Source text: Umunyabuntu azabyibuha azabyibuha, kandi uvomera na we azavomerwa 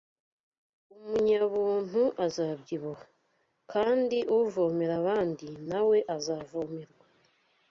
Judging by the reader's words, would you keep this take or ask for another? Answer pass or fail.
fail